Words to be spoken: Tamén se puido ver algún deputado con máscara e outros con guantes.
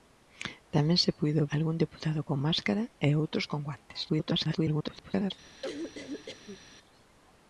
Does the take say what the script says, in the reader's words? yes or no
no